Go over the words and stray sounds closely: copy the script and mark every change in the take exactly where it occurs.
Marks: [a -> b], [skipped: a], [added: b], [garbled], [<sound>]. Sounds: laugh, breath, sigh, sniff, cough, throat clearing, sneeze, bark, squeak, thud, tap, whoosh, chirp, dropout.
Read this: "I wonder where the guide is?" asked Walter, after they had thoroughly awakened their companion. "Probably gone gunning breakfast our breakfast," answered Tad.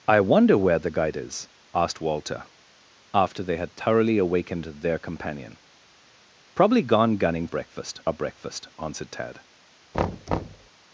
"I wonder where the guide is?" asked Walter, after they had thoroughly awakened their companion. "Probably gone gunning breakfast our breakfast," answered Tad. [thud]